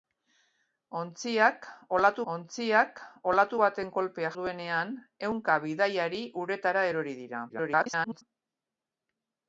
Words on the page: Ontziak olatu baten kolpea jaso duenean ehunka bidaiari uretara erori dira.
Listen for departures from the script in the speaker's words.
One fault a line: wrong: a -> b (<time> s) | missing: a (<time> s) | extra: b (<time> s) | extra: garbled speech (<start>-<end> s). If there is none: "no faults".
extra: ontziak olatu (2.3 s)
missing: jaso (4.3 s)
extra: garbled speech (7.5-8.2 s)